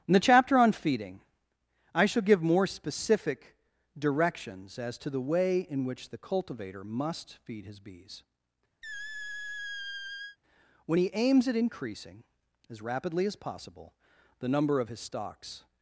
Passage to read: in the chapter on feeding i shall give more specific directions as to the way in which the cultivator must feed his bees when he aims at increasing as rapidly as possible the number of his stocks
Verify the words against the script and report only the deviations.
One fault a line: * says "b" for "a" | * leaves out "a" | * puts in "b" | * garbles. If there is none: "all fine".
all fine